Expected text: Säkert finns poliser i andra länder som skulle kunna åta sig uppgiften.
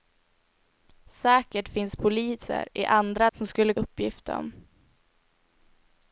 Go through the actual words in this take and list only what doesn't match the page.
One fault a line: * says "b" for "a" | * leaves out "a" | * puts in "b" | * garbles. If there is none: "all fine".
* leaves out "länder"
* leaves out "kunna åta sig"